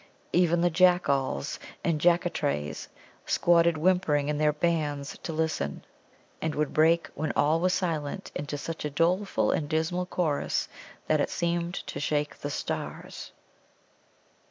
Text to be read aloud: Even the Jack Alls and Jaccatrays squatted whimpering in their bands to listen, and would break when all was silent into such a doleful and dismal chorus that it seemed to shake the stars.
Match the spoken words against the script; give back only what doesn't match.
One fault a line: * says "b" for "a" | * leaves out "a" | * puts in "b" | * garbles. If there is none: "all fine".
all fine